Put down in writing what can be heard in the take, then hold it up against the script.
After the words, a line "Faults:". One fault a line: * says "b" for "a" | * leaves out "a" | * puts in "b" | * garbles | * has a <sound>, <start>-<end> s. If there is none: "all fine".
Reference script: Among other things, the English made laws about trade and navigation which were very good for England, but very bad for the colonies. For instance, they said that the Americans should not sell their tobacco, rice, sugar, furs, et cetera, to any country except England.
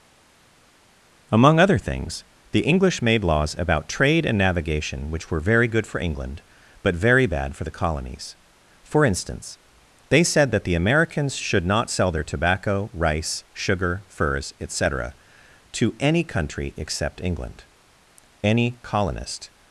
Among other things, the English made laws about trade and navigation which were very good for England, but very bad for the colonies. For instance, they said that the Americans should not sell their tobacco, rice, sugar, furs, et cetera, to any country except England. Any colonist
Faults:
* puts in "Any colonist"